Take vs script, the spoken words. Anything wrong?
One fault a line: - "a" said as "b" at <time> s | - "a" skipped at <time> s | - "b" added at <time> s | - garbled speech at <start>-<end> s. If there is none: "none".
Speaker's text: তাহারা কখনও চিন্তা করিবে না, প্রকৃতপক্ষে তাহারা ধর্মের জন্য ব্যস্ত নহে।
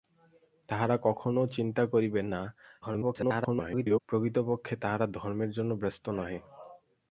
- garbled speech at 2.8-4.0 s